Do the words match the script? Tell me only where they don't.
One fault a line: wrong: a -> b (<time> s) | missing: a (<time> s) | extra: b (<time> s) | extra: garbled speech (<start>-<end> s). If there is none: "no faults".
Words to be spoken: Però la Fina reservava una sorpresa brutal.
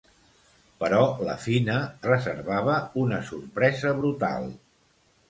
no faults